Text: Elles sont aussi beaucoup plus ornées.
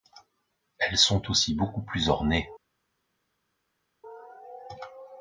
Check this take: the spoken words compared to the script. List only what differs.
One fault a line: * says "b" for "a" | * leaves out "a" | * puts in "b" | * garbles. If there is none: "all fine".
all fine